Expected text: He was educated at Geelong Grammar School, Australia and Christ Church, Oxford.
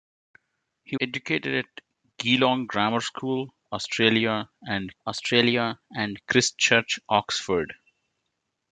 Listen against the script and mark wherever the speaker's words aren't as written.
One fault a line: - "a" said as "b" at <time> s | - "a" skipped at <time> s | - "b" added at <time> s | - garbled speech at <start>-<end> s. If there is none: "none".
- "was" skipped at 1.0 s
- "Australia and" added at 5.0 s